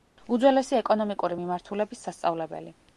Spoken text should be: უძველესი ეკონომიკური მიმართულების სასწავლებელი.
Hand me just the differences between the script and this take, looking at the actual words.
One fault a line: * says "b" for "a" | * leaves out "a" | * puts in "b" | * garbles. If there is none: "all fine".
all fine